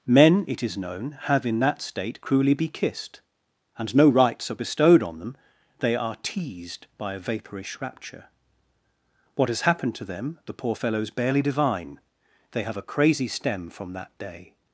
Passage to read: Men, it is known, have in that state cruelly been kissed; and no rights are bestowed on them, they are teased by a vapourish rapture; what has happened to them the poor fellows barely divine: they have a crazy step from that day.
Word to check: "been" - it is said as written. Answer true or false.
false